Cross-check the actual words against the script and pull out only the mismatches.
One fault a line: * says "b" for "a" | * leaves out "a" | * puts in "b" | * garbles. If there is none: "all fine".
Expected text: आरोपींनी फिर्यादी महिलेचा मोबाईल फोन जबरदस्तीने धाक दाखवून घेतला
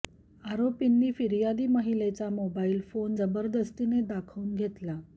* leaves out "धाक"